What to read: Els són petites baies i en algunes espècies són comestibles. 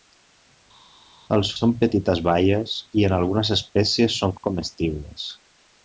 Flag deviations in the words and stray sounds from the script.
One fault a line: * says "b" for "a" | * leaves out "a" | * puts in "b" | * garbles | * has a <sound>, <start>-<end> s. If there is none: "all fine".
all fine